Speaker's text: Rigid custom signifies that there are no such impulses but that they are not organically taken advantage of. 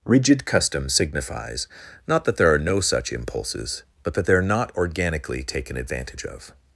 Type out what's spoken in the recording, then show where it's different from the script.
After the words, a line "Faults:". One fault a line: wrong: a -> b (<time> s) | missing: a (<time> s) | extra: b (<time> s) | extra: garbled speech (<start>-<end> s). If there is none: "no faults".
Rigid custom signifies not that there are no such impulses but that they are not organically taken advantage of.
Faults:
extra: not (2.1 s)